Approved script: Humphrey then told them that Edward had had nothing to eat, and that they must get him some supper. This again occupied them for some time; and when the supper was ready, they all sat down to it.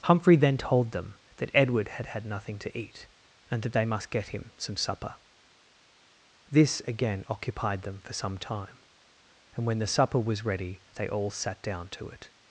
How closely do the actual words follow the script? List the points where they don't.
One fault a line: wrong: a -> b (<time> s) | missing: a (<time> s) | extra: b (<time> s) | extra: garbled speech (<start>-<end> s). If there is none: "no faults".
no faults